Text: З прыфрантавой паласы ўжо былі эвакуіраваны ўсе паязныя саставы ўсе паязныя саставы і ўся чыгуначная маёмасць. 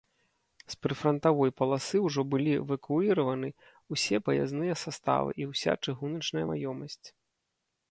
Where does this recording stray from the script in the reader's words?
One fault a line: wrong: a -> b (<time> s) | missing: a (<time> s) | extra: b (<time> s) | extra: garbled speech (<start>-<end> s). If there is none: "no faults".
missing: ўсе паязныя саставы (5.3 s)